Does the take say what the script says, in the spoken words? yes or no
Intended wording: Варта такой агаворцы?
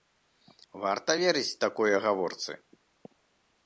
no